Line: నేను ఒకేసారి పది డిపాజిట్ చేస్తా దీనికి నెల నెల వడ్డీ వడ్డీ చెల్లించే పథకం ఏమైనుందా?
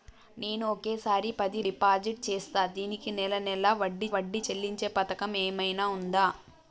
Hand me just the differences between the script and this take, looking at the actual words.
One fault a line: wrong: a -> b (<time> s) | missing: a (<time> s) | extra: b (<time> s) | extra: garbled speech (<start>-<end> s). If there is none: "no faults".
no faults